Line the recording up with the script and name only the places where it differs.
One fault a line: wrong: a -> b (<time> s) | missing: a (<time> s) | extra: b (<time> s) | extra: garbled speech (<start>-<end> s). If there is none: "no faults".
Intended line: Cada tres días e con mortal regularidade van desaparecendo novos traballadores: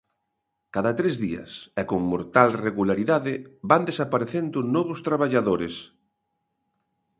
no faults